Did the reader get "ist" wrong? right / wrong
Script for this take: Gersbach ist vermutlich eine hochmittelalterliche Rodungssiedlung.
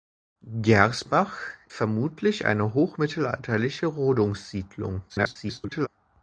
wrong